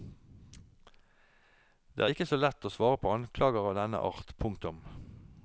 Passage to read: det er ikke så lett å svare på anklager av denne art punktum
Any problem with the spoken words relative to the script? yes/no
no